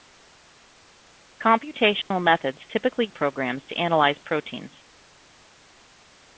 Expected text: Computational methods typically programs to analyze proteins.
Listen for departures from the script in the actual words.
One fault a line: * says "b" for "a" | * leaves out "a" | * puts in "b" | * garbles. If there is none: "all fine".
all fine